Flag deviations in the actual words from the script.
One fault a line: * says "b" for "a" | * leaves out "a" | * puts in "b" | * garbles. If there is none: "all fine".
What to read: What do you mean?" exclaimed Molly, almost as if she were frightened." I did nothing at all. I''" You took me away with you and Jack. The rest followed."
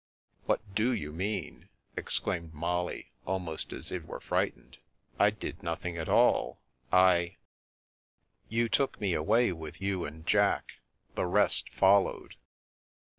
* leaves out "she"